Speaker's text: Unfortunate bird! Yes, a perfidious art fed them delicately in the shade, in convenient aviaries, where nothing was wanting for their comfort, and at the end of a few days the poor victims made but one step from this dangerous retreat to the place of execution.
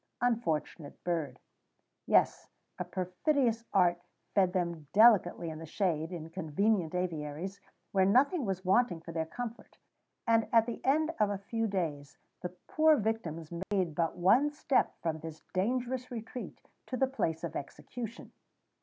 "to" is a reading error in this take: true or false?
false